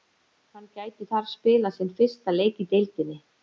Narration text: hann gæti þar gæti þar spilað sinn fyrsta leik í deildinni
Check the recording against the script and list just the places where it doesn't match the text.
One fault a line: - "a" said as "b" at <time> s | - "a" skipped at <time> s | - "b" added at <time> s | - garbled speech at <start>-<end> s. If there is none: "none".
- "gæti þar" skipped at 1.3 s